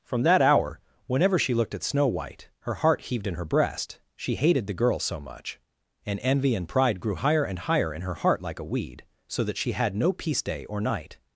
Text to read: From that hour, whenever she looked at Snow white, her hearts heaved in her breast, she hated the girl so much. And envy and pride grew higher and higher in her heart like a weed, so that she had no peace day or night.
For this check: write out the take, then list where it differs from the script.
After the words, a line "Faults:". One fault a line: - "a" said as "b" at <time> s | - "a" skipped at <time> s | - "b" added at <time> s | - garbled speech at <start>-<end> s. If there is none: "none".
From that hour, whenever she looked at Snow white, her heart heaved in her breast, she hated the girl so much. And envy and pride grew higher and higher in her heart like a weed, so that she had no peace day or night.
Faults:
- "hearts" said as "heart" at 2.8 s